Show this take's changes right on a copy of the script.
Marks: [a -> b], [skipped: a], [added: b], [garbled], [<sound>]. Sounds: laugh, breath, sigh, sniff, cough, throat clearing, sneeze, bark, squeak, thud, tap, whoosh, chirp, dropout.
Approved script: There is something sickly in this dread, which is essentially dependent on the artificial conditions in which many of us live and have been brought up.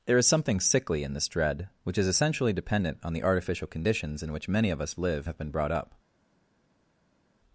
There is something sickly in this dread, which is essentially dependent on the artificial conditions in which many of us live [skipped: and] have been brought up.